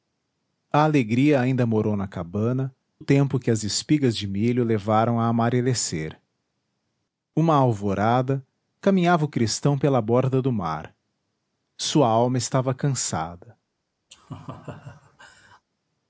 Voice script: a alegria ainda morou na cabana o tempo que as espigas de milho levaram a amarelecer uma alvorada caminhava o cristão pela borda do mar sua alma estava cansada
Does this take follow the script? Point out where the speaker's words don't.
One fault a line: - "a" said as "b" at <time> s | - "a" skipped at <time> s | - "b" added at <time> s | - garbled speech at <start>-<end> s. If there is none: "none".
none